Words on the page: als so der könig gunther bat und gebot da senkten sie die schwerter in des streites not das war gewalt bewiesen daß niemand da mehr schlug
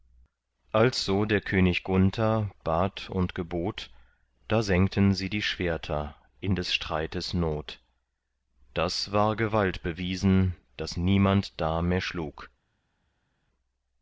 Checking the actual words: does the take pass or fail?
pass